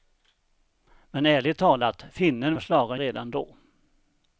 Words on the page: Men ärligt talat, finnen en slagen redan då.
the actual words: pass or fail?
pass